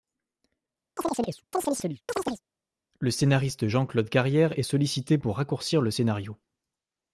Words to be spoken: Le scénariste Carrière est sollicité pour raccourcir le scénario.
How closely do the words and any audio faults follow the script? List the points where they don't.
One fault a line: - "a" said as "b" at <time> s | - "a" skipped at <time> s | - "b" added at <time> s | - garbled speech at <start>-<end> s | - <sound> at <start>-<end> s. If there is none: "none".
- chirp at 1.0-2.4 s
- "Jean Claude" added at 3.7 s